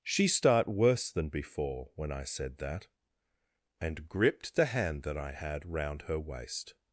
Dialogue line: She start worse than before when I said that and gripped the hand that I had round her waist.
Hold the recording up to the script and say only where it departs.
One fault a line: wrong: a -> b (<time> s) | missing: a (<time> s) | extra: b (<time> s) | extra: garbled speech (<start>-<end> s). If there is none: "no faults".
no faults